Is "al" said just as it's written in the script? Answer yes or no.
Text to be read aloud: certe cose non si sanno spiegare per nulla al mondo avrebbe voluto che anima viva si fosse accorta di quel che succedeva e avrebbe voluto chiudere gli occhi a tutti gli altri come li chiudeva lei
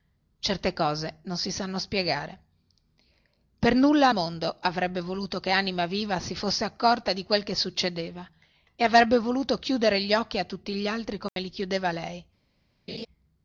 no